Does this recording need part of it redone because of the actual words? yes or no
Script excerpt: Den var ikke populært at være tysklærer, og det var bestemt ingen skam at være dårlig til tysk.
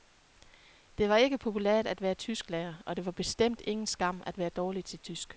yes